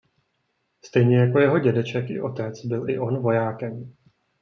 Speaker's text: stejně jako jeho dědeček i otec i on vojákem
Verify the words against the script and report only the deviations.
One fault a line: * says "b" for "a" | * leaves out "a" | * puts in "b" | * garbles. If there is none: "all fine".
* puts in "byl"